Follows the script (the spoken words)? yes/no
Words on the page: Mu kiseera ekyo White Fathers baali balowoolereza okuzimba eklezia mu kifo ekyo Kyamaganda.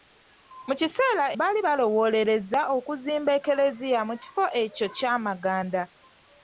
no